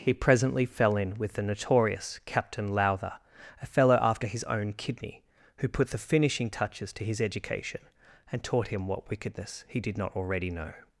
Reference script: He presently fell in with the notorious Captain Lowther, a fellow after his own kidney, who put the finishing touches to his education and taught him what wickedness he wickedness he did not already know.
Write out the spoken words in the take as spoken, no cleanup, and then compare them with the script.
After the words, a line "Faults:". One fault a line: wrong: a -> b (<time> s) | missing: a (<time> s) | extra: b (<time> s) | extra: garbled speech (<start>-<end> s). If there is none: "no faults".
He presently fell in with the notorious Captain Lowther, a fellow after his own kidney, who put the finishing touches to his education and taught him what wickedness he did not already know.
Faults:
missing: wickedness he (9.8 s)